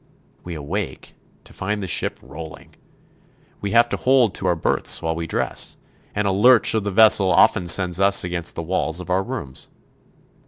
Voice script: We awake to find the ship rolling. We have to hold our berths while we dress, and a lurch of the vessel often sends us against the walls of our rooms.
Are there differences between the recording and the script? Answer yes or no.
yes